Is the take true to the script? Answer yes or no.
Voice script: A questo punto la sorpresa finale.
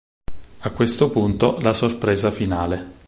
yes